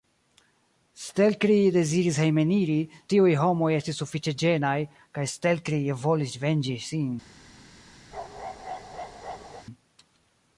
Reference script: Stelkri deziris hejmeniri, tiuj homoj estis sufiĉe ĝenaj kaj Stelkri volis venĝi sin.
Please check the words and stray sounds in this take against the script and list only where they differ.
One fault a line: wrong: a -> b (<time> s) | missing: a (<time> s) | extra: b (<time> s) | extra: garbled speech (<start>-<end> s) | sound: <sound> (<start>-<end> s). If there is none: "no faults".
sound: bark (8.1-9.7 s)